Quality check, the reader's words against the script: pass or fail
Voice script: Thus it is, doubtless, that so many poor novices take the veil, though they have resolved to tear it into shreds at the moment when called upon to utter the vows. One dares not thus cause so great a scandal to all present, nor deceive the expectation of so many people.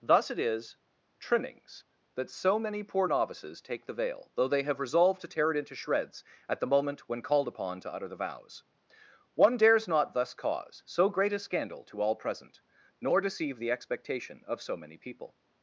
fail